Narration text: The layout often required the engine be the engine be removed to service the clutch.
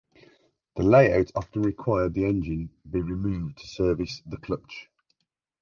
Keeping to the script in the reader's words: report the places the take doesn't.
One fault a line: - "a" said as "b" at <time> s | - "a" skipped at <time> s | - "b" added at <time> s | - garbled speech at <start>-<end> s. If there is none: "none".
- "the engine be" skipped at 3.0 s